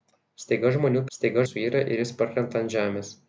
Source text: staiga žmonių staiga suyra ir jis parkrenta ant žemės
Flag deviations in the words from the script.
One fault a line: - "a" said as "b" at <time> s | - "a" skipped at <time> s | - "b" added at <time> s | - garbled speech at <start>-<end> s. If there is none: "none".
none